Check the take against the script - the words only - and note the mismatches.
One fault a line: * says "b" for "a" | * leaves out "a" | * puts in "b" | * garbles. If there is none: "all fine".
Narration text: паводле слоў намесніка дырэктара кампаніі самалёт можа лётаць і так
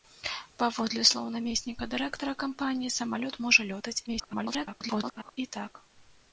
* garbles